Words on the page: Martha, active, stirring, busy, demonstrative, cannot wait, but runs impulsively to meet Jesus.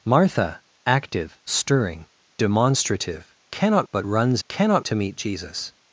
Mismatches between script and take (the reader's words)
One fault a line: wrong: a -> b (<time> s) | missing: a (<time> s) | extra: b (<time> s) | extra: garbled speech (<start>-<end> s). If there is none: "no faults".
missing: busy (2.1 s)
missing: wait (3.9 s)
wrong: impulsively -> cannot (4.5 s)